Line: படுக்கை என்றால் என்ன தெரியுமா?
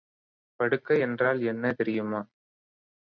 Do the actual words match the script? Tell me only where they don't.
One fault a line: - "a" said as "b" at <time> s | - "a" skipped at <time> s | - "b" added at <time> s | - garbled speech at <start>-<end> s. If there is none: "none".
none